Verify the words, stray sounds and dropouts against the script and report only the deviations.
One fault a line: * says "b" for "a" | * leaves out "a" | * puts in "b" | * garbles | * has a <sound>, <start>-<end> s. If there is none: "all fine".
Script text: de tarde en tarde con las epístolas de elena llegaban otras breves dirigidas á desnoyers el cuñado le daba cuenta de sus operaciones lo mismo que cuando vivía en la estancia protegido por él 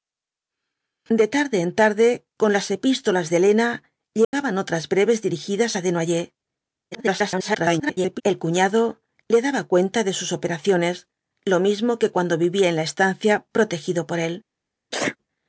* has a dropout, 4.2-4.3 s
* garbles
* has a sneeze, 14.9-15.2 s